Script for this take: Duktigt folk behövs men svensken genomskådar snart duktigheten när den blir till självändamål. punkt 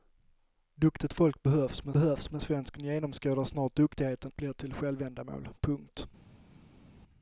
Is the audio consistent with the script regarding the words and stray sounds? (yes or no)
no